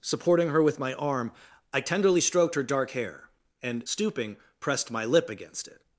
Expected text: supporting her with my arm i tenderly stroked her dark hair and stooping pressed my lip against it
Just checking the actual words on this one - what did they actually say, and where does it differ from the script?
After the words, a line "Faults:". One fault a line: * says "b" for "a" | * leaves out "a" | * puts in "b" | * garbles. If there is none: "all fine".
supporting her with my arm i tenderly stroked her dark hair and stooping pressed my lip against it
Faults:
all fine